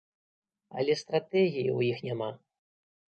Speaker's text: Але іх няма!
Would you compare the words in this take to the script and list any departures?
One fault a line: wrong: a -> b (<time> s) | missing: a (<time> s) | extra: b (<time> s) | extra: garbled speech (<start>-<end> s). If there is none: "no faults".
extra: стратэгіі ў (1.0 s)